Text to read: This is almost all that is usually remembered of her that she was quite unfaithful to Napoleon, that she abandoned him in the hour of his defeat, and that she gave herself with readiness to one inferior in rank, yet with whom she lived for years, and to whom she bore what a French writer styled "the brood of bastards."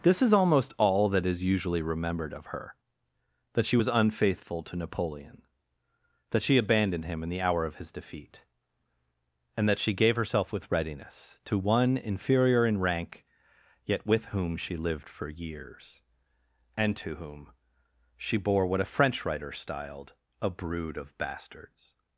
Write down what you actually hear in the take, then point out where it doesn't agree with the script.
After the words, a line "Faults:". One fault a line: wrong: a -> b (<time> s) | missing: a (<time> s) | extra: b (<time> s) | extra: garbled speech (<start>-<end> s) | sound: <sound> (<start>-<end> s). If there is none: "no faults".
This is almost all that is usually remembered of her that she was unfaithful to Napoleon, that she abandoned him in the hour of his defeat, and that she gave herself with readiness to one inferior in rank, yet with whom she lived for years, and to whom she bore what a French writer styled "a brood of bastards."
Faults:
missing: quite (3.9 s)
wrong: the -> a (20.4 s)